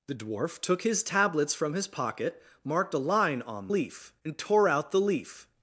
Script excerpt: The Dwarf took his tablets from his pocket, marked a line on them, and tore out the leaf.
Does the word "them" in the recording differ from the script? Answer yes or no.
yes